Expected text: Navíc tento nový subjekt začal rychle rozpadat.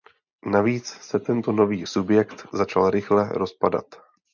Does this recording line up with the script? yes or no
no